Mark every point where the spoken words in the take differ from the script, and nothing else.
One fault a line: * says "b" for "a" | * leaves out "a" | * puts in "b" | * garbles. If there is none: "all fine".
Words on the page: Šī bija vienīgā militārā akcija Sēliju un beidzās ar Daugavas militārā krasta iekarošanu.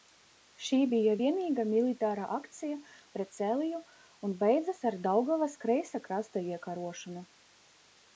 * puts in "pret"
* says "kreisā" for "militārā"